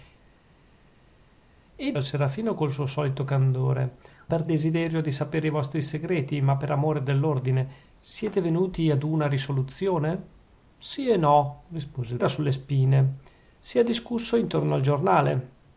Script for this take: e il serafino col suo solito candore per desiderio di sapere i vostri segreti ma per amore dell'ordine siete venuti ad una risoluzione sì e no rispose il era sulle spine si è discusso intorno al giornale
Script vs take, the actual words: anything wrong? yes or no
no